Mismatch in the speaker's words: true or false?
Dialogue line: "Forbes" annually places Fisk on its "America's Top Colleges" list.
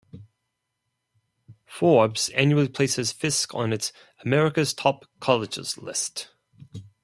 false